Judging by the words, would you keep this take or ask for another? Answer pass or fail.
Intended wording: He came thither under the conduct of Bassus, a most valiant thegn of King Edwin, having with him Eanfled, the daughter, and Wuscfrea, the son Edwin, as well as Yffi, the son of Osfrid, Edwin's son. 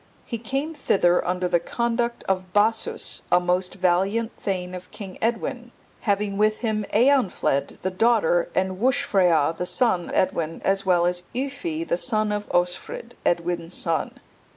pass